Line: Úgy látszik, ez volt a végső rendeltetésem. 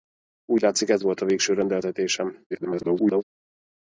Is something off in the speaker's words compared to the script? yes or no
yes